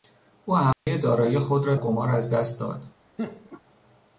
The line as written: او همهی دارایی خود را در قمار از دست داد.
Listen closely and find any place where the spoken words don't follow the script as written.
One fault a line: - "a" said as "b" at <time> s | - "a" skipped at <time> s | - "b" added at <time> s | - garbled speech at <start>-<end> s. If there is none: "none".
- "در" skipped at 1.8 s